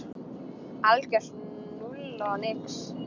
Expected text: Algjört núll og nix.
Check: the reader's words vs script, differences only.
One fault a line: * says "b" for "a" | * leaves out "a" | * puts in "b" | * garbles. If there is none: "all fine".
all fine